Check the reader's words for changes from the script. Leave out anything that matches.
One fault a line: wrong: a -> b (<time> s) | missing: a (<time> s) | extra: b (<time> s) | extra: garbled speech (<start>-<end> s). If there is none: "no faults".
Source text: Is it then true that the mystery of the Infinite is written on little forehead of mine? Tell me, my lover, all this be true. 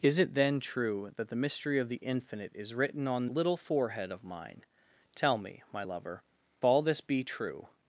no faults